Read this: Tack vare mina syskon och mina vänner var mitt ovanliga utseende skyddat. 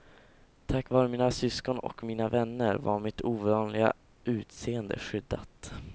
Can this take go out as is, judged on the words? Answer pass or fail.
pass